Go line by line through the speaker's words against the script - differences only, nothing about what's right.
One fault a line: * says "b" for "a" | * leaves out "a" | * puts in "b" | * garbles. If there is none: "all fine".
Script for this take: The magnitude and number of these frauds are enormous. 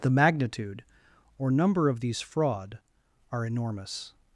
* says "or" for "and"
* says "fraud" for "frauds"